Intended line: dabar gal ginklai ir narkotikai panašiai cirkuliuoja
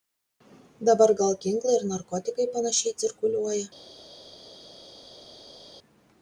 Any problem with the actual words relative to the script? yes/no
no